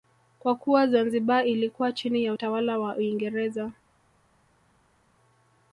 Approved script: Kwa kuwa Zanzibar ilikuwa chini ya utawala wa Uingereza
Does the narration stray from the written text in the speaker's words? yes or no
no